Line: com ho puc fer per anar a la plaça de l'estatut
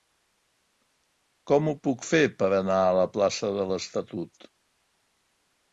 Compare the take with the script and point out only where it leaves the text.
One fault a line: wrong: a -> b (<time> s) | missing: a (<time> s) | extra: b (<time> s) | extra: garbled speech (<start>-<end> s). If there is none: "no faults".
no faults